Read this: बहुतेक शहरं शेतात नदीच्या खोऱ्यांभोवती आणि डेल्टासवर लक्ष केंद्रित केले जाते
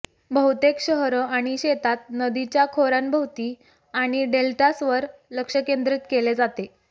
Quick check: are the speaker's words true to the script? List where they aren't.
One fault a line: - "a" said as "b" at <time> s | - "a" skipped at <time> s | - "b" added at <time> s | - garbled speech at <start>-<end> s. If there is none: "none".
- "आणि" added at 1.3 s